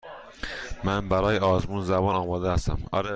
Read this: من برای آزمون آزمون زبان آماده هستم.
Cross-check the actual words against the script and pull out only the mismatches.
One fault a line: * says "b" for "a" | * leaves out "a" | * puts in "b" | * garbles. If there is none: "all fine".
* leaves out "آزمون"